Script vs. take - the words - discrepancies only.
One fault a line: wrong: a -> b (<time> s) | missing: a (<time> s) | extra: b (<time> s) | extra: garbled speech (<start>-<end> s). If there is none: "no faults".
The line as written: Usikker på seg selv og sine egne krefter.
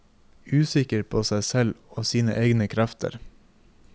no faults